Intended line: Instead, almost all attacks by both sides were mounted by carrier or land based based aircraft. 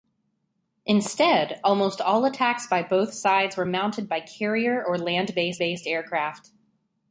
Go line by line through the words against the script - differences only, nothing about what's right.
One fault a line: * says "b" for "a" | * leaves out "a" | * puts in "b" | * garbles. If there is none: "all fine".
all fine